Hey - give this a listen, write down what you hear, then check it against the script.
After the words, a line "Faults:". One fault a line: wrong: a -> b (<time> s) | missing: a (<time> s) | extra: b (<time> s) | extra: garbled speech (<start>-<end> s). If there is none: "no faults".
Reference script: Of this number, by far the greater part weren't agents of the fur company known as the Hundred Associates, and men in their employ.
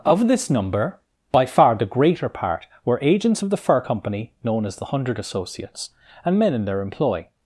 Of this number, by far the greater part were agents of the fur company known as the Hundred Associates, and men in their employ.
Faults:
wrong: weren't -> were (2.9 s)